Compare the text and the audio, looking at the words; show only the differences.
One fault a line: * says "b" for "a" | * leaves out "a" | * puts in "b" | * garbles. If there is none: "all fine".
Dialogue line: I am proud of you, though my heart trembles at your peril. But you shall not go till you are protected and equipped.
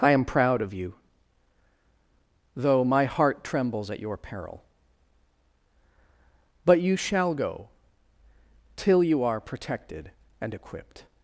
* leaves out "not"